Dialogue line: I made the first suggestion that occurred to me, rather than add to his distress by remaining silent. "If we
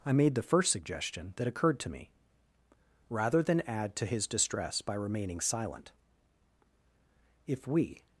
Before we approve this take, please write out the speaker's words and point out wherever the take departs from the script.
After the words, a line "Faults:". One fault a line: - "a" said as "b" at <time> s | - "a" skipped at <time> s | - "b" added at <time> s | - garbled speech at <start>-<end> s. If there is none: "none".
I made the first suggestion that occurred to me, rather than add to his distress by remaining silent. "If we
Faults:
none